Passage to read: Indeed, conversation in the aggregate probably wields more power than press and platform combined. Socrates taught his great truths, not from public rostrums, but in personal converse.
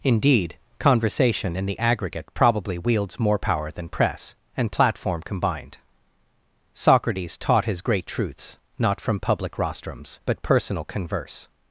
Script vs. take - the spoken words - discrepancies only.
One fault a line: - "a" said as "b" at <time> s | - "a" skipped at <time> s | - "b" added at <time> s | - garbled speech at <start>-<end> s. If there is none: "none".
- "in" skipped at 10.4 s